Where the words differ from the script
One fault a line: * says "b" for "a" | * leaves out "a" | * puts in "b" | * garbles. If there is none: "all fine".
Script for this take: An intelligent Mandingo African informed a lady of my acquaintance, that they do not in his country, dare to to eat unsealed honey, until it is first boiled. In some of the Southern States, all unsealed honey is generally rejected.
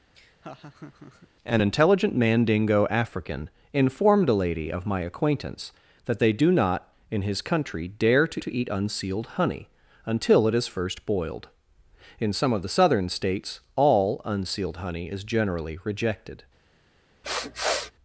all fine